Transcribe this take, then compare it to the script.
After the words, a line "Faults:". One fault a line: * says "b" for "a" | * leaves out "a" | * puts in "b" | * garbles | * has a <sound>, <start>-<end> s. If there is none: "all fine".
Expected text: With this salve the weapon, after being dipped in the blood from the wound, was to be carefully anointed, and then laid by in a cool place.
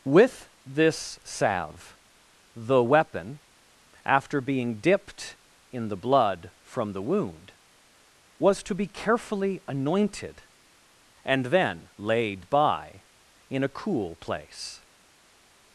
With this salve the weapon, after being dipped in the blood from the wound, was to be carefully anointed, and then laid by in a cool place.
Faults:
all fine